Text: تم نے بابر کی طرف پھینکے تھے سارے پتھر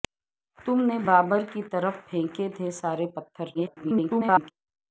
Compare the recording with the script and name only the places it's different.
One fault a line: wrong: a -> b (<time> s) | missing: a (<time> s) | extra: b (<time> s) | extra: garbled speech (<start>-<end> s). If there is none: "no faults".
extra: garbled speech (3.5-4.5 s)